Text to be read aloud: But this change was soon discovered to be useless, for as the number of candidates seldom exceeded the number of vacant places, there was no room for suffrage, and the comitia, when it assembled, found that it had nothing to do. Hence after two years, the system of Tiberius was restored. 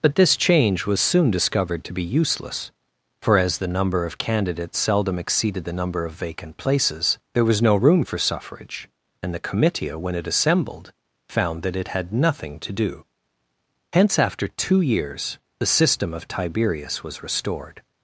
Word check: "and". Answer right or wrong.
right